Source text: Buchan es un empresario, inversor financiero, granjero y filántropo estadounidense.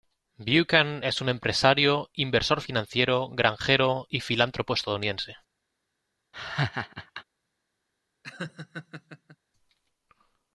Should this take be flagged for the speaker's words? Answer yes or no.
no